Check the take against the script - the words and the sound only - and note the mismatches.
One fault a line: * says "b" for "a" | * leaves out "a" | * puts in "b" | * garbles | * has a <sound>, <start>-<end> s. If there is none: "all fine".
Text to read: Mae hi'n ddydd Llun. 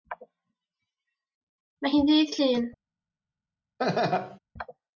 * has a laugh, 3.8-4.4 s